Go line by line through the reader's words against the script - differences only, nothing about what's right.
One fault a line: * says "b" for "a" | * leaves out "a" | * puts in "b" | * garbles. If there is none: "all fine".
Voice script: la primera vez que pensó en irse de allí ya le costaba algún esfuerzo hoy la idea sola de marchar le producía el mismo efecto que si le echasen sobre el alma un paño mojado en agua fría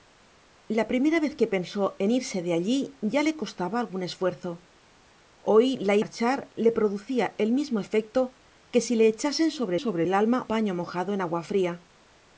* leaves out "idea sola de"
* puts in "sobre"
* leaves out "un"